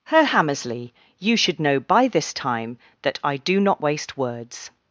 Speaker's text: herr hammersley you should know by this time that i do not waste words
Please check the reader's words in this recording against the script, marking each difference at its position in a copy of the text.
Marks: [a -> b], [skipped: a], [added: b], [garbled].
herr hammersley you should know by this time that i do not waste words